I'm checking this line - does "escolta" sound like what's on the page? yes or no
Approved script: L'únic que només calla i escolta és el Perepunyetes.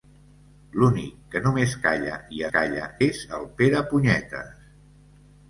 no